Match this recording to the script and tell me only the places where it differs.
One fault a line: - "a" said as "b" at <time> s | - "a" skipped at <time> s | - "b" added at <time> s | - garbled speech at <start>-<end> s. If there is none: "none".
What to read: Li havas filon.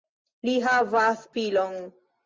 none